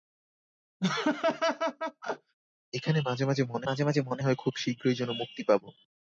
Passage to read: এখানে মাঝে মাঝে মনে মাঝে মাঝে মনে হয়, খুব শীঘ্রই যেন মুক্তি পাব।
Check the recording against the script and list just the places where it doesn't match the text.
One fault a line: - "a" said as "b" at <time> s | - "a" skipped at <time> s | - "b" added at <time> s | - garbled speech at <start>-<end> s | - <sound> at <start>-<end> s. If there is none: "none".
- laugh at 0.8-2.3 s